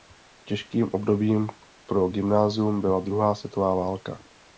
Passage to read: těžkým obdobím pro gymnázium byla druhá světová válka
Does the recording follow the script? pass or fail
pass